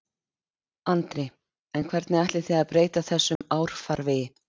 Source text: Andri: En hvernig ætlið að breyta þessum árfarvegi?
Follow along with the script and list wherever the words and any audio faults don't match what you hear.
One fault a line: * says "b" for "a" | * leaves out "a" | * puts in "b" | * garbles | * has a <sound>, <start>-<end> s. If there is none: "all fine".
* puts in "þið"
* has a dropout, 3.4-3.4 s